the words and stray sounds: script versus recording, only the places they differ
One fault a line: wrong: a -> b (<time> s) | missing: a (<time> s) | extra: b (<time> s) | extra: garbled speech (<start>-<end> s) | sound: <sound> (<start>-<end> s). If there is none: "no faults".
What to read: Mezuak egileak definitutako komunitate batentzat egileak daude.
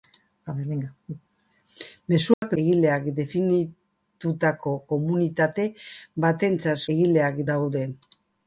sound: dropout (2.3-2.4 s)